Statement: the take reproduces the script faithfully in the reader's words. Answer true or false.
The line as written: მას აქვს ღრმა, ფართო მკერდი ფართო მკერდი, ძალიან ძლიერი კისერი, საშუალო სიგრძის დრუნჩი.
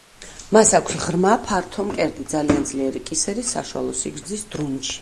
false